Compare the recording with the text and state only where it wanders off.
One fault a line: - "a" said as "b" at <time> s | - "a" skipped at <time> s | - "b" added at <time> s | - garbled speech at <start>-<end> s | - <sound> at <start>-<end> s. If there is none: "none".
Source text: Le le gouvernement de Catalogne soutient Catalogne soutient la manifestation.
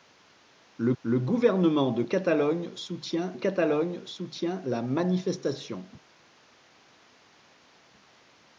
none